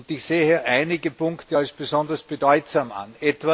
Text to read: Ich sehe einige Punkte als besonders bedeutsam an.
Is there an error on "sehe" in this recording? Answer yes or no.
no